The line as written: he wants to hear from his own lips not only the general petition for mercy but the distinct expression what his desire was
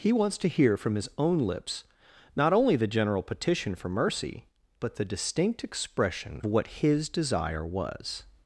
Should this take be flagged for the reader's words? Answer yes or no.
no